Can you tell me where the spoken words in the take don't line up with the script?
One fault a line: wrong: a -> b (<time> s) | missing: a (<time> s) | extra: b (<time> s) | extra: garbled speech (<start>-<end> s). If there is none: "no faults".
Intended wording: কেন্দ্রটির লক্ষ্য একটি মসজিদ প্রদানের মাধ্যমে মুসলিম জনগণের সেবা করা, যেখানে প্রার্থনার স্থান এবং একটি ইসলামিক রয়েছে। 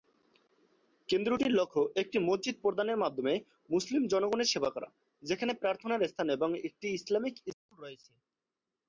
extra: স্কুল (7.5 s)